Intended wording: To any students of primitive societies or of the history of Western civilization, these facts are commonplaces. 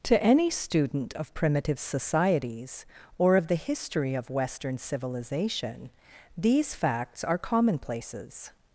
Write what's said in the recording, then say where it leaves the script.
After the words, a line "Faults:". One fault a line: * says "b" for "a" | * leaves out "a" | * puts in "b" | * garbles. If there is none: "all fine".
To any student of primitive societies or of the history of Western civilization, these facts are commonplaces.
Faults:
* says "student" for "students"